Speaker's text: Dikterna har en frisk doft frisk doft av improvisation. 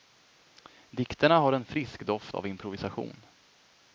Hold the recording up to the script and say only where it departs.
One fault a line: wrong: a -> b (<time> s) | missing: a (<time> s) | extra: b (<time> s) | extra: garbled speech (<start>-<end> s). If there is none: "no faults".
missing: frisk doft (2.4 s)